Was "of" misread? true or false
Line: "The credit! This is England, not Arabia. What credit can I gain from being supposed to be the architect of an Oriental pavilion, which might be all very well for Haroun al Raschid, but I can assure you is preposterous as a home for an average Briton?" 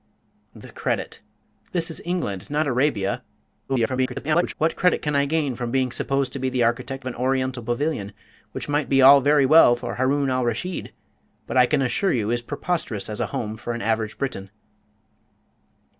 true